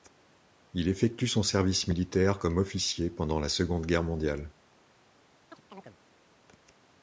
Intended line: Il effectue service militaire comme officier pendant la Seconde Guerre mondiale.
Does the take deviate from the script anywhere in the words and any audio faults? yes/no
yes